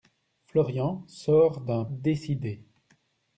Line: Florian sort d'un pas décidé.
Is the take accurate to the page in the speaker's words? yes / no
no